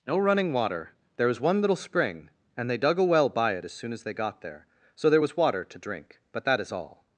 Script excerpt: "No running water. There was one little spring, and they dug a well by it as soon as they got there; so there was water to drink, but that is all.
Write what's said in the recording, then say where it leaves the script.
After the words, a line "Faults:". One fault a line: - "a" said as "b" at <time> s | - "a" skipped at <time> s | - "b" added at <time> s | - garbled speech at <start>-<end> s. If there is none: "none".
"No running water. There was one little spring, and they dug a well by it as soon as they got there; so there was water to drink, but that is all.
Faults:
none